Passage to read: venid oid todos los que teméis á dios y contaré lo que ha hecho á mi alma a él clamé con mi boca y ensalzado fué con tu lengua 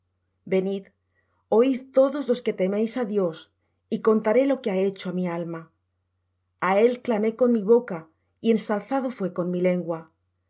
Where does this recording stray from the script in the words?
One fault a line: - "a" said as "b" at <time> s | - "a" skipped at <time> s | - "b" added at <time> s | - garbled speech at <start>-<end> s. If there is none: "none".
- "tu" said as "mi" at 9.5 s